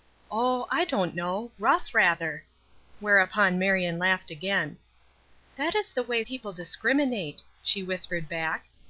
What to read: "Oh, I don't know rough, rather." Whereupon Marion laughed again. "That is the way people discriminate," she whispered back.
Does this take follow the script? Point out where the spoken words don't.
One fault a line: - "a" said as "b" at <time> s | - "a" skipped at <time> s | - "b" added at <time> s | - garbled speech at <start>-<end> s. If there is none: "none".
none